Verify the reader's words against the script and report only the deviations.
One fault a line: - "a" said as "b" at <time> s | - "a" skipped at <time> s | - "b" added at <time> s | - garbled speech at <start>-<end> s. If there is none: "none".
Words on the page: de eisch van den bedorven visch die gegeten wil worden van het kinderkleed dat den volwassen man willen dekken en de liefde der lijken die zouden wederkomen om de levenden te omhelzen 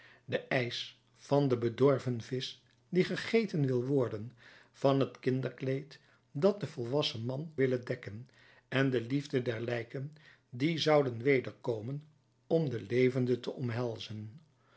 none